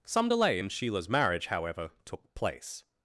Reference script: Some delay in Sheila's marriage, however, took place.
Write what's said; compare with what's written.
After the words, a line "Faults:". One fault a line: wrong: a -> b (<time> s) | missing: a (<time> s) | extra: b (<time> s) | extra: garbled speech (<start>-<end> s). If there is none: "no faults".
Some delay in Sheila's marriage, however, took place.
Faults:
no faults